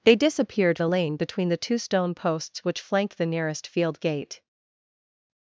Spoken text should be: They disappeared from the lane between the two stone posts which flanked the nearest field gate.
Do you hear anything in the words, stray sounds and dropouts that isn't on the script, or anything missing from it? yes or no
yes